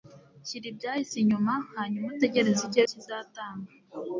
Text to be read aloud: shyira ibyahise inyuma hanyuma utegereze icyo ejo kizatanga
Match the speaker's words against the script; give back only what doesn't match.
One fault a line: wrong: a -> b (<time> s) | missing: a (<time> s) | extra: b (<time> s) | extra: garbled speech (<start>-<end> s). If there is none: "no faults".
missing: ejo (2.8 s)